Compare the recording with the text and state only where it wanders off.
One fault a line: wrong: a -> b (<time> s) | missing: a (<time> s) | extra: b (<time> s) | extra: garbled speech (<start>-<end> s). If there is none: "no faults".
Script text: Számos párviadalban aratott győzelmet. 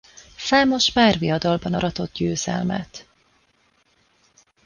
no faults